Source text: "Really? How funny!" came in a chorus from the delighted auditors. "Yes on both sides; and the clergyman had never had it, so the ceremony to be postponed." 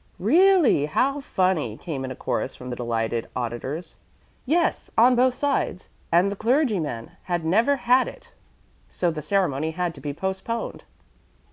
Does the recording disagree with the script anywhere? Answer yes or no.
yes